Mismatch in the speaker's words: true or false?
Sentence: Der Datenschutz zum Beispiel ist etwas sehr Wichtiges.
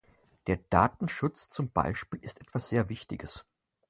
false